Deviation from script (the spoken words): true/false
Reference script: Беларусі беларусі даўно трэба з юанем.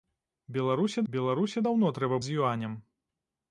false